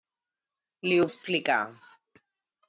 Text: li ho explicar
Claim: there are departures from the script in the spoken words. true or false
false